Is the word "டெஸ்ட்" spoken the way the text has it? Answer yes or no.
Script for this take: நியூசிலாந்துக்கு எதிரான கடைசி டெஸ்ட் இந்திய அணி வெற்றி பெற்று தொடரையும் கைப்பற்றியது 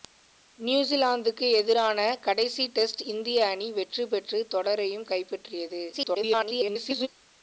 yes